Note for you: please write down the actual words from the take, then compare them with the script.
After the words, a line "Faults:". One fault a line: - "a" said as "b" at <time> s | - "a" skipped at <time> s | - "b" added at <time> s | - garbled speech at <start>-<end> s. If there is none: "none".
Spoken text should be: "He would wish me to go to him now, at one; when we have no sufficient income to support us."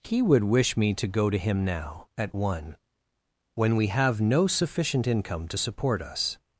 "He would wish me to go to him now, at one; when we have no sufficient income to support us."
Faults:
none